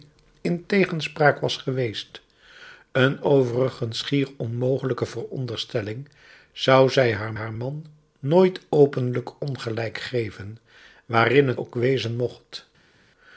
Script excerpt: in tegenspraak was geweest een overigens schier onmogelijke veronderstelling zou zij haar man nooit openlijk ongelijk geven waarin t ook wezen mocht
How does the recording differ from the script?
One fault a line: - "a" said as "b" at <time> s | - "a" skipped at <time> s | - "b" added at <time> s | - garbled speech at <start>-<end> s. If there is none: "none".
- "haar" added at 7.3 s
- "t" skipped at 11.6 s